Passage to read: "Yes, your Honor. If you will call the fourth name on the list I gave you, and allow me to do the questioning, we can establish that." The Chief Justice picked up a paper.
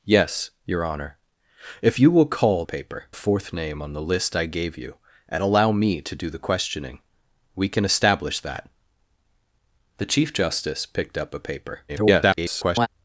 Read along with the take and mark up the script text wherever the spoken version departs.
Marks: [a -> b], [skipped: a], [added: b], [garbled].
"Yes, your Honor. If you will call [the -> paper] fourth name on the list I gave you, and allow me to do the questioning, we can establish that." The Chief Justice picked up a paper. [garbled]